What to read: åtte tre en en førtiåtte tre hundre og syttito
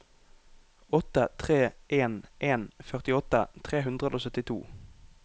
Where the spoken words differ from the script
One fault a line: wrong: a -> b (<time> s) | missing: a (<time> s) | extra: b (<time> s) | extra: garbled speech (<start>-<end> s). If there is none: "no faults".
no faults